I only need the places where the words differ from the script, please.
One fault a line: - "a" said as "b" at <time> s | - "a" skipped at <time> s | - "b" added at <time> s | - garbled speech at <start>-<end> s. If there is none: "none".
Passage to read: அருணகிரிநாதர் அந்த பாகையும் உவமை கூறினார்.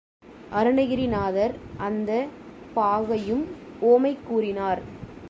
none